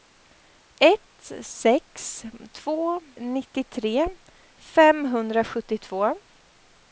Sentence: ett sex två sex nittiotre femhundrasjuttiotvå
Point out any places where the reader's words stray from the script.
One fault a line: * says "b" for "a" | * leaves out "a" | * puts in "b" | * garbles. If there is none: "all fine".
* leaves out "sex"